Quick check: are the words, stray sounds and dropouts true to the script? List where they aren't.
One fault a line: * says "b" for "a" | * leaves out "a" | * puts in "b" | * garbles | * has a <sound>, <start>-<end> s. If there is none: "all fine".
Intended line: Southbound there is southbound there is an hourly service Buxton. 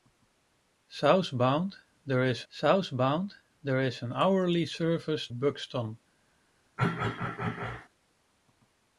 * has a throat clearing, 6.8-7.9 s